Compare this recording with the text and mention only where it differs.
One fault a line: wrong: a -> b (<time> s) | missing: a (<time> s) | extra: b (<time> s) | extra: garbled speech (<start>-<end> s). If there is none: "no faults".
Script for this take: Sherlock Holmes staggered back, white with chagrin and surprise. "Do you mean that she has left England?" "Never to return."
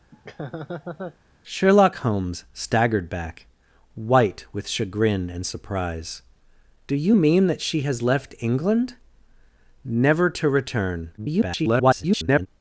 extra: garbled speech (11.2-12.5 s)